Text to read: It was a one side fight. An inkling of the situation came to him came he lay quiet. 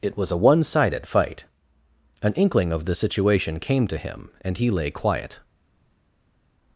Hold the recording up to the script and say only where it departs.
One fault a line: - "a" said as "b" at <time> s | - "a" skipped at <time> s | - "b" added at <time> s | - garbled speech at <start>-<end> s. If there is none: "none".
- "side" said as "sided" at 0.6 s
- "came" said as "and" at 4.4 s